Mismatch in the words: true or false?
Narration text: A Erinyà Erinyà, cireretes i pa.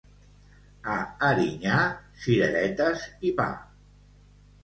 true